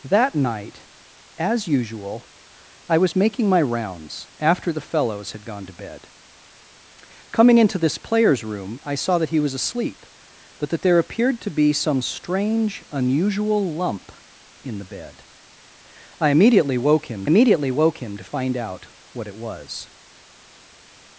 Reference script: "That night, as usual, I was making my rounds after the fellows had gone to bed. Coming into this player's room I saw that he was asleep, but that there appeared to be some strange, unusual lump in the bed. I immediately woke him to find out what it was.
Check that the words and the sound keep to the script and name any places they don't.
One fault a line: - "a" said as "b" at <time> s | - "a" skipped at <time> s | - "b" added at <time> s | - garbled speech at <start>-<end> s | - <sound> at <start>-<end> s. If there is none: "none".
- "immediately woke him" added at 17.2 s